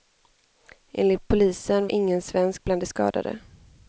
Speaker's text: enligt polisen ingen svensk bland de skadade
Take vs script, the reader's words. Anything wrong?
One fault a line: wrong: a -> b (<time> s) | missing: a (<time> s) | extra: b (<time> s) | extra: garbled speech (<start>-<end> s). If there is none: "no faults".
no faults